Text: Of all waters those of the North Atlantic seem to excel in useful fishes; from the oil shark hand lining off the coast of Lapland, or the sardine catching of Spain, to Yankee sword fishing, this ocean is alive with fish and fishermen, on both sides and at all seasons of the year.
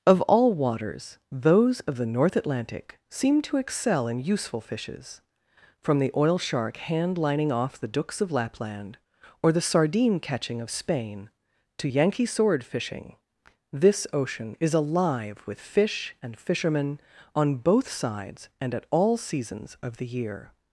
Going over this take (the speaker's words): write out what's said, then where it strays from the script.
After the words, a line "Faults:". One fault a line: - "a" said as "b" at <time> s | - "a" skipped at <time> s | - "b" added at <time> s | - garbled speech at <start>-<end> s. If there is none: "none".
Of all waters those of the North Atlantic seem to excel in useful fishes; from the oil shark hand lining off the dooks of Lapland, or the sardine catching of Spain, to Yankee sword fishing, this ocean is alive with fish and fishermen, on both sides and at all seasons of the year.
Faults:
- "coast" said as "dooks" at 7.9 s